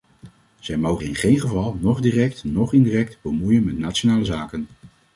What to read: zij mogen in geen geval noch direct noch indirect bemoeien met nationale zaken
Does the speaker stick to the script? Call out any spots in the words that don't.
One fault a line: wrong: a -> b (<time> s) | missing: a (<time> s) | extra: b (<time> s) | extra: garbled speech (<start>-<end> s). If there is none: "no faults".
no faults